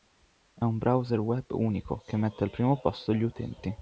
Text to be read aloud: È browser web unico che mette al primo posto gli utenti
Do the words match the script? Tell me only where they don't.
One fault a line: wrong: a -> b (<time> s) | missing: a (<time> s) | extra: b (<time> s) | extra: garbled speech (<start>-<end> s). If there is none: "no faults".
extra: un (0.6 s)